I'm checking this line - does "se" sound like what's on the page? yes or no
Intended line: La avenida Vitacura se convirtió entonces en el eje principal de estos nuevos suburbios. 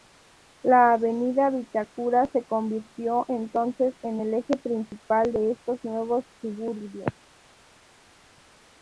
yes